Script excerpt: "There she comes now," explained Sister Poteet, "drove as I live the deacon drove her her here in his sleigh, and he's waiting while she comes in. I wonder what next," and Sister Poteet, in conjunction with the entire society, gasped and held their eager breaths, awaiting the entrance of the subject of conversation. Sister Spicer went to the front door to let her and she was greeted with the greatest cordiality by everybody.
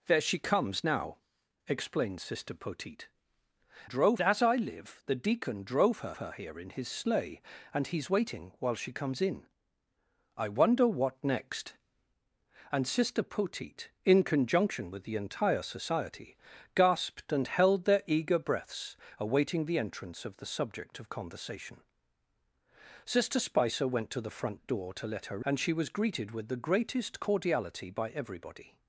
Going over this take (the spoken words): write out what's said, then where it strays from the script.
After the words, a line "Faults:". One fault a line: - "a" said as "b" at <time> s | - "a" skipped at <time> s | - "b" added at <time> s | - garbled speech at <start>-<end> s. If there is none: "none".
"There she comes now," explained Sister Poteet, "drove as I live the deacon drove her her here in his sleigh, and he's waiting while she comes in. I wonder what next," and Sister Poteet, in conjunction with the entire society, gasped and held their eager breaths, awaiting the entrance of the subject of conversation. Sister Spicer went to the front door to let her and she was greeted with the greatest cordiality by everybody.
Faults:
none